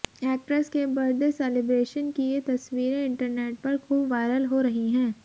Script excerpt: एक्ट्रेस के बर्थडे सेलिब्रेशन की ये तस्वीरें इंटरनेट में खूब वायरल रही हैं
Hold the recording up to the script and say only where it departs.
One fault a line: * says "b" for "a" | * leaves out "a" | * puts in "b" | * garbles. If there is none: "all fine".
* says "पर" for "में"
* puts in "हो"